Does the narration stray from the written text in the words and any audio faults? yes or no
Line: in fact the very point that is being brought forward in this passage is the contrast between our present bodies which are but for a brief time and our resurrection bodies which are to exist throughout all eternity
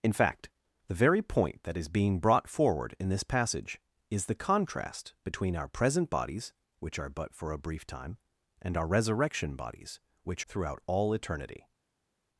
yes